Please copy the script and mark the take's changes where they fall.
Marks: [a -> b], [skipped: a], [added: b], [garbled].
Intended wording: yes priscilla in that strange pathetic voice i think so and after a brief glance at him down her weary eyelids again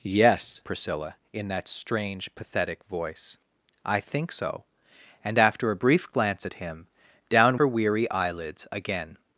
yes priscilla in that strange pathetic voice i think so and after a brief glance at him down her weary eyelids again